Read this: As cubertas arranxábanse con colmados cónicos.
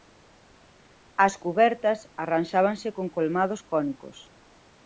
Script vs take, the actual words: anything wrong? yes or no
no